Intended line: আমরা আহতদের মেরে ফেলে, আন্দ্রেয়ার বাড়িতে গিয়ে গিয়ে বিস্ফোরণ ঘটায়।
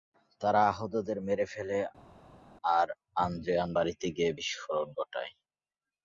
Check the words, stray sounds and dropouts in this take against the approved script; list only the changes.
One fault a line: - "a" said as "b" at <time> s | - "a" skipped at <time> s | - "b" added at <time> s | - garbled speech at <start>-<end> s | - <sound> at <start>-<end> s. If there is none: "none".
- "আমরা" said as "তারা" at 0.4 s
- "আর" added at 2.8 s
- "গিয়ে" skipped at 4.3 s